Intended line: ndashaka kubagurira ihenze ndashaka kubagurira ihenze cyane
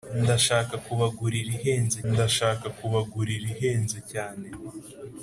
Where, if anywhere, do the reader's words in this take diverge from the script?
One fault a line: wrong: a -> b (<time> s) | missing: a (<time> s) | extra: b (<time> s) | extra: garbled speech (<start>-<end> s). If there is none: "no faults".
no faults